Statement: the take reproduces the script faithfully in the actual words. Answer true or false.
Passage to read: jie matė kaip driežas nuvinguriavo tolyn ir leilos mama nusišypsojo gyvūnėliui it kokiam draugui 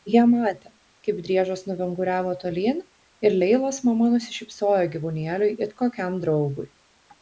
true